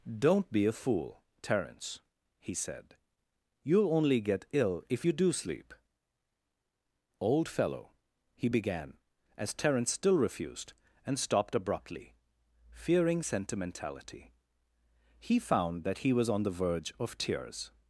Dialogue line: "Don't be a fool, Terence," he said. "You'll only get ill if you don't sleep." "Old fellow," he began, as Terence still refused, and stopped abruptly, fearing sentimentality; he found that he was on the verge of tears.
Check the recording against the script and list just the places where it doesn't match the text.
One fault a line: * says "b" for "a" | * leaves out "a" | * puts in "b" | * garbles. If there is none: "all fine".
* says "do" for "don't"